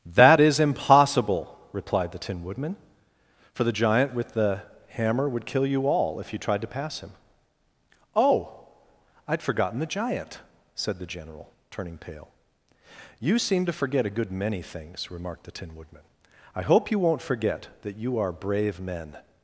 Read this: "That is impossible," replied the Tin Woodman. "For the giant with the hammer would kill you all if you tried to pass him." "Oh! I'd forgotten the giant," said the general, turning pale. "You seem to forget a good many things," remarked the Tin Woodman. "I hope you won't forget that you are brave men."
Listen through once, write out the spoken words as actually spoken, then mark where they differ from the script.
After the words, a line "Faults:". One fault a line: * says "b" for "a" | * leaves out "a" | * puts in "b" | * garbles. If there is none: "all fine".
"That is impossible," replied the Tin Woodman. "For the giant with the hammer would kill you all if you tried to pass him." "Oh! I'd forgotten the giant," said the general, turning pale. "You seem to forget a good many things," remarked the Tin Woodman. "I hope you won't forget that you are brave men."
Faults:
all fine